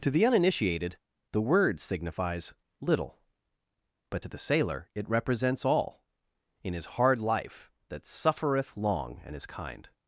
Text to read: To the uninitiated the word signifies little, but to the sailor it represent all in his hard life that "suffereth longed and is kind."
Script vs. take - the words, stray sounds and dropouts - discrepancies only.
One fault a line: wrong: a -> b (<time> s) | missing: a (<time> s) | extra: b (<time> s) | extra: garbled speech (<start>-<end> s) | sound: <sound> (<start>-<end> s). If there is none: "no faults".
wrong: represent -> represents (5.1 s)
wrong: longed -> long (8.8 s)